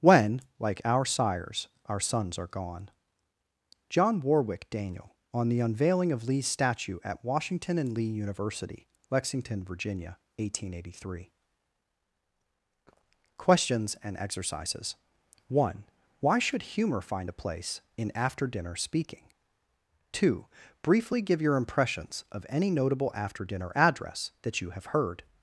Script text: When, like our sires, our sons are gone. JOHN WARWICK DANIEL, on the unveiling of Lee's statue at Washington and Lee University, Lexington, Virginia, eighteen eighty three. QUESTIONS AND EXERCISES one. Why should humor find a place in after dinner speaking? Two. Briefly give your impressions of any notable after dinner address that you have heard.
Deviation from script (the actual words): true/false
false